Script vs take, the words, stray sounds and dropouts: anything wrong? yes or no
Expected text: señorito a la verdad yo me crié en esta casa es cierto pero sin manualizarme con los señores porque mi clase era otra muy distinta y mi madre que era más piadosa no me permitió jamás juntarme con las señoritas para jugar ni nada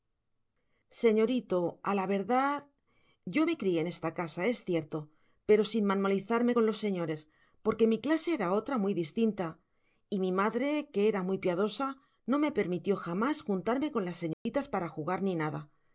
yes